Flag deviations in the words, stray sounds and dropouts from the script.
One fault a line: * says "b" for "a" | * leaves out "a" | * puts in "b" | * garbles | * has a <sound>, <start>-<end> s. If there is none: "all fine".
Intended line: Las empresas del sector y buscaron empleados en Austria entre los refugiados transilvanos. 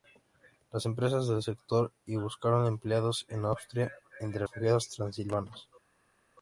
* leaves out "los"